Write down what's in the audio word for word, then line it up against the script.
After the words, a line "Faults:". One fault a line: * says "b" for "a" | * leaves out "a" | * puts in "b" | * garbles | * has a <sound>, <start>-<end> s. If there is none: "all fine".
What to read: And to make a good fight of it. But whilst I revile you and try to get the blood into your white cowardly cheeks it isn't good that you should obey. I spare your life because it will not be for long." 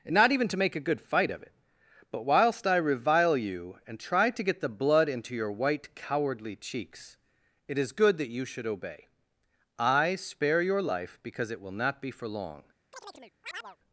And not even to make a good fight of it. But whilst I revile you and try to get the blood into your white cowardly cheeks it is good that you should obey. I spare your life because it will not be for long."
Faults:
* puts in "not even"
* says "is" for "isn't"
* has a chirp, 12.9-13.8 s